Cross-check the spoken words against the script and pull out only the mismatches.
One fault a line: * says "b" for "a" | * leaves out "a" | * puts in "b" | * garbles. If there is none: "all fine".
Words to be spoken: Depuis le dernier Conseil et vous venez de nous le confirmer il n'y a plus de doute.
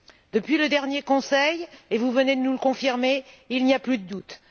all fine